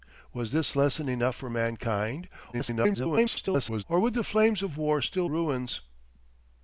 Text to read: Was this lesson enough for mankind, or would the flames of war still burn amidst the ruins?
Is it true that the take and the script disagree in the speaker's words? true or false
true